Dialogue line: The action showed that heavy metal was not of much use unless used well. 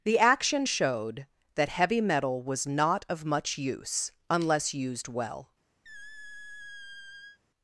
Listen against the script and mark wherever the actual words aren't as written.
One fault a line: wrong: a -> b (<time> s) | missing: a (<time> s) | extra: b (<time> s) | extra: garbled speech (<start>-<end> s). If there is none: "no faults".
no faults